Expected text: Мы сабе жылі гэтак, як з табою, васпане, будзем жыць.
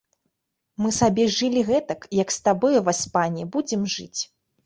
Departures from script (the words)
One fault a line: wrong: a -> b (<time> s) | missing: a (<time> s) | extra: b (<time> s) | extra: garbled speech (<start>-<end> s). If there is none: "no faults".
no faults